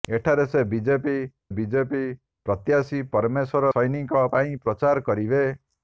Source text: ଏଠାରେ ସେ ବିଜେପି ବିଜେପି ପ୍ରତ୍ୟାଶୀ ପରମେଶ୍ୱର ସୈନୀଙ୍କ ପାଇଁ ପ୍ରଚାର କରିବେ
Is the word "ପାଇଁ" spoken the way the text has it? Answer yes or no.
yes